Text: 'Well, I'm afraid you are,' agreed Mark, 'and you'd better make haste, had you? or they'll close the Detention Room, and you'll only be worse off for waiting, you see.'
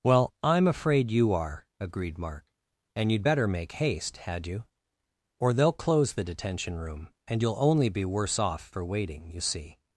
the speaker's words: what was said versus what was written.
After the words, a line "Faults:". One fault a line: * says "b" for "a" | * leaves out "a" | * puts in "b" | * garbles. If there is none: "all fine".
'Well, I'm afraid you are,' agreed Mark, 'and you'd better make haste, had you? or they'll close the Detention Room, and you'll only be worse off for waiting, you see.'
Faults:
all fine